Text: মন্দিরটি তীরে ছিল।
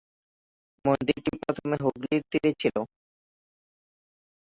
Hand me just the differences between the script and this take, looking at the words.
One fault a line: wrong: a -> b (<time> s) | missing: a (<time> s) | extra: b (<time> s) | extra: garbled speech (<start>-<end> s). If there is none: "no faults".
extra: প্রথমে হুগলির (1.4 s)